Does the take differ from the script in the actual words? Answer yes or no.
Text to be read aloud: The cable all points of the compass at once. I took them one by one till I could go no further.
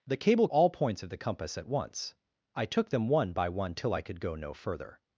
no